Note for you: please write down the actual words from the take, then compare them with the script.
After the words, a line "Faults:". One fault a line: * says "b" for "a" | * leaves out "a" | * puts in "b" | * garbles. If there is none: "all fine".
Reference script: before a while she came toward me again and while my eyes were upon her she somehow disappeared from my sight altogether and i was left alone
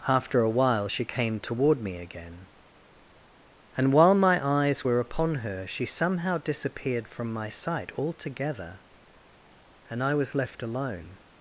after a while she came toward me again and while my eyes were upon her she somehow disappeared from my sight altogether and i was left alone
Faults:
* says "after" for "before"